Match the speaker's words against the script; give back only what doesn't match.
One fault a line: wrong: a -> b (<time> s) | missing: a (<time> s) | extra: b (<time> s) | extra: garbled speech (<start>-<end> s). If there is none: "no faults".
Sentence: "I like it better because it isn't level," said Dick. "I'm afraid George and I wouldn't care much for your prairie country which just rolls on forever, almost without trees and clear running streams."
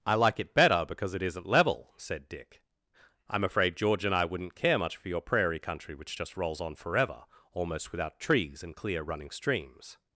no faults